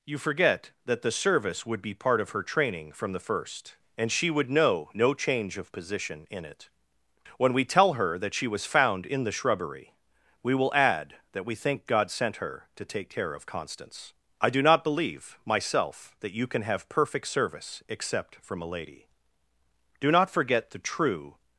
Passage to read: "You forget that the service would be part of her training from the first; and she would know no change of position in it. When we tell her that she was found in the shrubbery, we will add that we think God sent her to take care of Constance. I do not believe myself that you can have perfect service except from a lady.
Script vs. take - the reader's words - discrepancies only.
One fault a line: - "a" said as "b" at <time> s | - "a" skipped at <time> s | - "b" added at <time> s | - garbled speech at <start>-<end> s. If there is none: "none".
- "Do not forget the true" added at 20.0 s